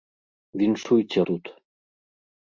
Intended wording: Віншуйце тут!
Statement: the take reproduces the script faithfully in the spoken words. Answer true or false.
true